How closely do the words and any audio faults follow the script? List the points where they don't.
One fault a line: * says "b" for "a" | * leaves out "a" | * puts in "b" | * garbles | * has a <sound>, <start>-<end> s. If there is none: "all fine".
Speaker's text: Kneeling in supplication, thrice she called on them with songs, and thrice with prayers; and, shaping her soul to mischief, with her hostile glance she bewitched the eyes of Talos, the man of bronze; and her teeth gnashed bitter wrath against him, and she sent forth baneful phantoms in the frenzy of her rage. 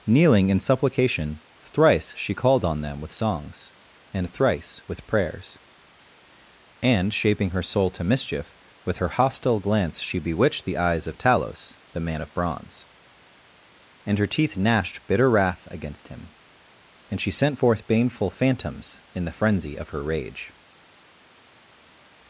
all fine